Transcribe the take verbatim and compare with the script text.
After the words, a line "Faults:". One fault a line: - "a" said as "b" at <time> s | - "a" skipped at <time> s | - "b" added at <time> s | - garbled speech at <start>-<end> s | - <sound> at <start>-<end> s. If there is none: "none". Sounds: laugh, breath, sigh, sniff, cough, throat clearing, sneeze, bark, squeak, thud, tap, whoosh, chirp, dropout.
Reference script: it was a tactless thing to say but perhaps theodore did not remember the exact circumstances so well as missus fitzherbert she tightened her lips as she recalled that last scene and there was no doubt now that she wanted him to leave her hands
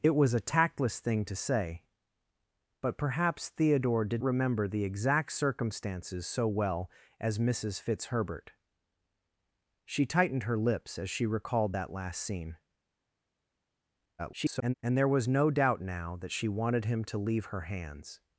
it was a tactless thing to say but perhaps theodore did remember the exact circumstances so well as missus fitzherbert she tightened her lips as she recalled that last scene [garbled] and there was no doubt now that she wanted him to leave her hands
Faults:
- "not" skipped at 4.2 s
- garbled speech at 14.2-14.7 s